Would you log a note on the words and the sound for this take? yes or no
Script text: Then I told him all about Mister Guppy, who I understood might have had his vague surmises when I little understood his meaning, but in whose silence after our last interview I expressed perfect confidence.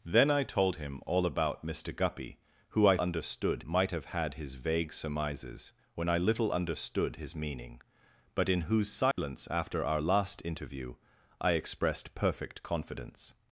yes